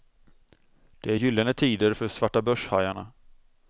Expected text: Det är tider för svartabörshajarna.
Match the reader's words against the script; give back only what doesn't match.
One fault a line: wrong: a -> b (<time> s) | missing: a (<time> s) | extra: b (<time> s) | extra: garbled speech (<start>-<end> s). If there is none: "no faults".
extra: gyllene (1.1 s)